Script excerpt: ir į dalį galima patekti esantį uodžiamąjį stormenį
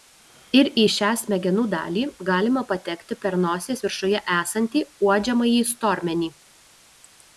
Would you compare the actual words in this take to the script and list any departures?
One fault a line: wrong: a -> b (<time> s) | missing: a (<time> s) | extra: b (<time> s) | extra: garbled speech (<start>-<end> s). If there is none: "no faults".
extra: šią smegenų (0.9 s)
extra: per nosies viršuje (3.3 s)